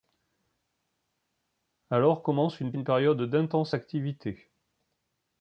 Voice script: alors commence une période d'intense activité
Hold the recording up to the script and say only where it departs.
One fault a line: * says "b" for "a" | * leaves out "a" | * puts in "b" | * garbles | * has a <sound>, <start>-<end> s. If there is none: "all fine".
* puts in "une"